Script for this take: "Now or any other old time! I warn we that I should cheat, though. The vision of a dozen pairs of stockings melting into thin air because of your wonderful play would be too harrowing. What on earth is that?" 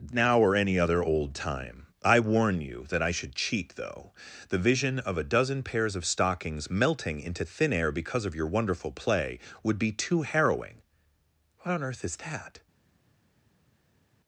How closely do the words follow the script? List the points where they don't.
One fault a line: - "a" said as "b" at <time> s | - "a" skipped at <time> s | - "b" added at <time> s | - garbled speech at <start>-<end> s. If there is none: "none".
- "we" said as "you" at 2.6 s